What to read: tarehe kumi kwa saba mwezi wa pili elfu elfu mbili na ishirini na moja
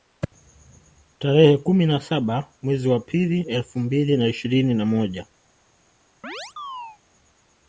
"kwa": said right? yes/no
no